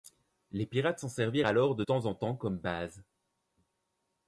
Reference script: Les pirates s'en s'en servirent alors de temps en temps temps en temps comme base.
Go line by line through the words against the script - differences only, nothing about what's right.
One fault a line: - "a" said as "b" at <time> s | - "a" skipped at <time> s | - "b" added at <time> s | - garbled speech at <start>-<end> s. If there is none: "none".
- "s'en" skipped at 1.1 s
- "temps en temps" skipped at 2.3 s